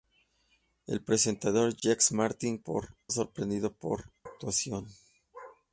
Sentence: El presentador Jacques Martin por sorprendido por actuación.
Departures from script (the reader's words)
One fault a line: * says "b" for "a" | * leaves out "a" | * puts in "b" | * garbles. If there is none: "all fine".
all fine